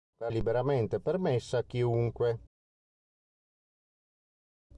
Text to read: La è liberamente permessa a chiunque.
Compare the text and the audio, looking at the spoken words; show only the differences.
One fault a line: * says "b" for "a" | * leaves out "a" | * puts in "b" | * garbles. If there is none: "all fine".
all fine